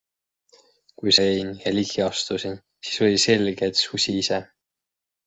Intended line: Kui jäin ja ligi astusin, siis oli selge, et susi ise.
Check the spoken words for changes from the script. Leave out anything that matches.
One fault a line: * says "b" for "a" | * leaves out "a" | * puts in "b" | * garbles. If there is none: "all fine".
all fine